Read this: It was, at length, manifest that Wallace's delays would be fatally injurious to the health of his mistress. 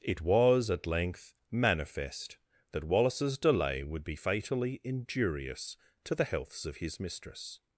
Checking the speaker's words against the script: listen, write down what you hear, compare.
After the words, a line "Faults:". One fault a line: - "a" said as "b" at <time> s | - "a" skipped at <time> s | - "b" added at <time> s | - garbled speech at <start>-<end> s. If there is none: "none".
It was, at length, manifest that Wallace's delay would be fatally injurious to the healths of his mistress.
Faults:
- "delays" said as "delay" at 3.4 s
- "health" said as "healths" at 6.2 s